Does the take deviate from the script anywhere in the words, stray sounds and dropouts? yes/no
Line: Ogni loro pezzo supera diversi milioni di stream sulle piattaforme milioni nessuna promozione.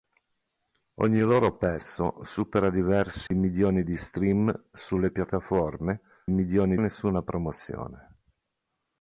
yes